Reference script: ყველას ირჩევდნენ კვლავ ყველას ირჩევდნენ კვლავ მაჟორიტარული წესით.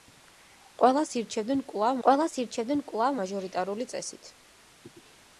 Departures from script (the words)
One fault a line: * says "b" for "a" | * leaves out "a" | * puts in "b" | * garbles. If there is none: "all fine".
all fine